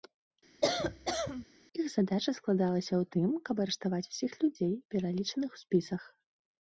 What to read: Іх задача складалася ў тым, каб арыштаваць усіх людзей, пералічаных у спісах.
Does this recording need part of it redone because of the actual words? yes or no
no